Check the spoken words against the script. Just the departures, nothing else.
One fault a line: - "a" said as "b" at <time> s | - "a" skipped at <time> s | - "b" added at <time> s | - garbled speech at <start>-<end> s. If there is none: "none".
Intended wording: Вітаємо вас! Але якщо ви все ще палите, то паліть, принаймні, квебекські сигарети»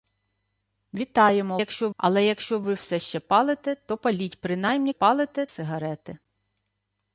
- "вас" said as "якщо" at 1.6 s
- "квебекські" said as "палите" at 4.9 s